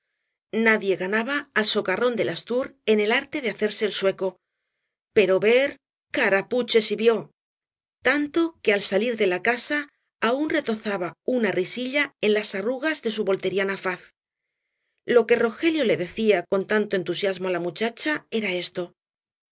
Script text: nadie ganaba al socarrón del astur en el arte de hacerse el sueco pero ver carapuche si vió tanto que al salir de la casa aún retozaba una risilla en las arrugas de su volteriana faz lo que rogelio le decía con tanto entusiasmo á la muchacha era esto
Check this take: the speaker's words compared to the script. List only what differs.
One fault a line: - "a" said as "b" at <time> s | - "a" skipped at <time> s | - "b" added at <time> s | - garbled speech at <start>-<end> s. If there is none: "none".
none